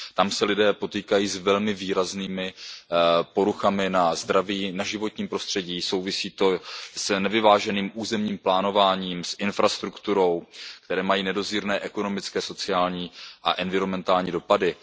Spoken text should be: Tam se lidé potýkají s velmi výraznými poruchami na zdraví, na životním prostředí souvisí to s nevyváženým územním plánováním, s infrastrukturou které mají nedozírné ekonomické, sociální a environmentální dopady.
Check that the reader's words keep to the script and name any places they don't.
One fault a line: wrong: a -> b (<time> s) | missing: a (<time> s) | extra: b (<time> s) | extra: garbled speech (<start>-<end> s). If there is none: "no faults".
no faults